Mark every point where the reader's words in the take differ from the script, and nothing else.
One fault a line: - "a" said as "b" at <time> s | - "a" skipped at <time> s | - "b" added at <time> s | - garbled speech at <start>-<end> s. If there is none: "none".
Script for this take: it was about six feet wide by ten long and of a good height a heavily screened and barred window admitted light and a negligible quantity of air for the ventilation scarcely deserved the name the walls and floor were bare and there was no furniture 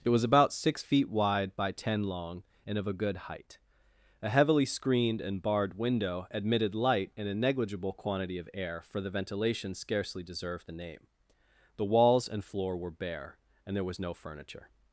none